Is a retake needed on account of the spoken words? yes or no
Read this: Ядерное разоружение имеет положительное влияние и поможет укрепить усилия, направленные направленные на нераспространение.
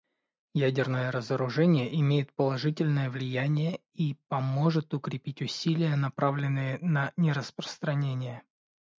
yes